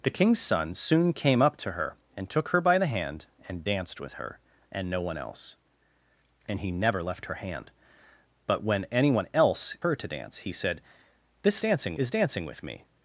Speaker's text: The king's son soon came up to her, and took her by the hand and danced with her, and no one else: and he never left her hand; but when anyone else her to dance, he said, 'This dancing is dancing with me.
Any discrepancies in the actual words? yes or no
no